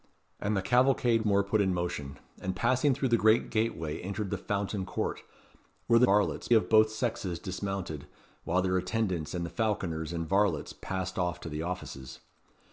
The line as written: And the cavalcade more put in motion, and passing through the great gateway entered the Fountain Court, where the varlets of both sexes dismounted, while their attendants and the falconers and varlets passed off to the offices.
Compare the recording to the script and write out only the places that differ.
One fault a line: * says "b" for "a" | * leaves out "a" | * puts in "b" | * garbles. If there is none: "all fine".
all fine